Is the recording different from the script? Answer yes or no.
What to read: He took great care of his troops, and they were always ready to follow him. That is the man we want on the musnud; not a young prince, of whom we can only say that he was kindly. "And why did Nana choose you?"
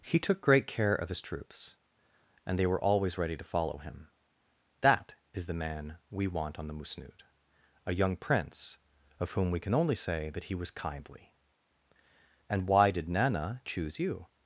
yes